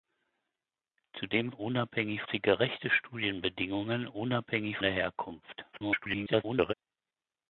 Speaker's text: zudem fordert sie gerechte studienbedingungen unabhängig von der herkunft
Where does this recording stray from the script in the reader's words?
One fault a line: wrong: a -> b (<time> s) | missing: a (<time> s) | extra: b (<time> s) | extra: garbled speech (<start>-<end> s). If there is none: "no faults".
wrong: fordert -> unabhängig (1.5 s)
missing: von (4.8 s)
extra: garbled speech (5.7-6.7 s)